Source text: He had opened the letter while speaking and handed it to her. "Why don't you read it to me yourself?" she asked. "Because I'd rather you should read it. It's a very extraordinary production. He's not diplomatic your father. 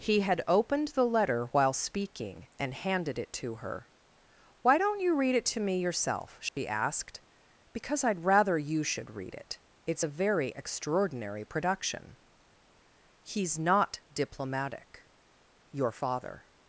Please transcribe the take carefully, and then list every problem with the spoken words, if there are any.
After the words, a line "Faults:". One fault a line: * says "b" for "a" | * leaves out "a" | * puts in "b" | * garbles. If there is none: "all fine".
He had opened the letter while speaking and handed it to her. "Why don't you read it to me yourself?" she asked. "Because I'd rather you should read it. It's a very extraordinary production. He's not diplomatic your father.
Faults:
all fine